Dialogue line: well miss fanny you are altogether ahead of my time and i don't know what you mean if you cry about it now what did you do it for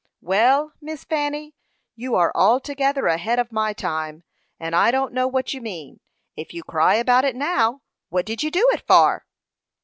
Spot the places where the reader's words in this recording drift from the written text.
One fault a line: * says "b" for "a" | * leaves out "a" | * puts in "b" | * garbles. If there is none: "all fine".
all fine